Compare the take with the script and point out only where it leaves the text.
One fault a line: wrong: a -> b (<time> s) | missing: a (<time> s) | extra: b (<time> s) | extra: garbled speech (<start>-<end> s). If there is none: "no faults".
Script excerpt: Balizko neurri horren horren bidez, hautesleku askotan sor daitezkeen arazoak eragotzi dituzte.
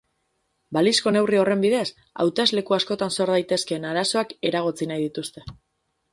missing: horren (1.6 s)
extra: nahi (4.9 s)